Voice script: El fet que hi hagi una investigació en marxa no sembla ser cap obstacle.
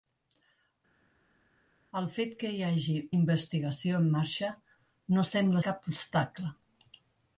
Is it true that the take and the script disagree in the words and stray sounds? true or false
true